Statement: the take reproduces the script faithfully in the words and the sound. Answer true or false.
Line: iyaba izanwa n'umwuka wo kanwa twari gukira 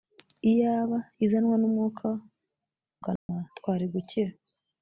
false